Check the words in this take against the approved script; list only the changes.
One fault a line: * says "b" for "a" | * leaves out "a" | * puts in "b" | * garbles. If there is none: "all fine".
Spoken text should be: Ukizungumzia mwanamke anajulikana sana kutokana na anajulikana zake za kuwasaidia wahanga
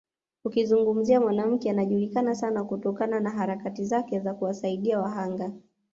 * says "harakati" for "anajulikana"